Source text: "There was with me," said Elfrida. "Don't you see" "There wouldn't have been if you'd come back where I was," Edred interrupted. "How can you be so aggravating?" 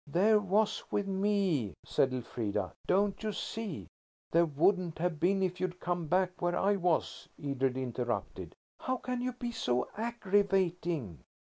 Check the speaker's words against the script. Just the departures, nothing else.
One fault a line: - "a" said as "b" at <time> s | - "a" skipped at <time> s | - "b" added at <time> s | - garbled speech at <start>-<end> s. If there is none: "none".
none